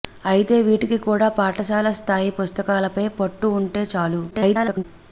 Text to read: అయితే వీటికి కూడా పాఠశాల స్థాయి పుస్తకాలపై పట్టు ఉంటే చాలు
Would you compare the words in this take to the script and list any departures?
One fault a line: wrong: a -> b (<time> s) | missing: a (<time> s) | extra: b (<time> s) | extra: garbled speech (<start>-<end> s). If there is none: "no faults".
extra: garbled speech (4.3-4.8 s)